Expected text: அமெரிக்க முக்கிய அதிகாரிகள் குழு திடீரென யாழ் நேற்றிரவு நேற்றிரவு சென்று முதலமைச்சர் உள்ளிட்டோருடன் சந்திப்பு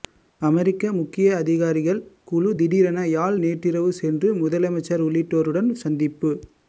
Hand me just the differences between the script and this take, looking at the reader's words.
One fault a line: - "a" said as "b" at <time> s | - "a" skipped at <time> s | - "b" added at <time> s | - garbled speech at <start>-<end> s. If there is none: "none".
- "நேற்றிரவு" skipped at 3.9 s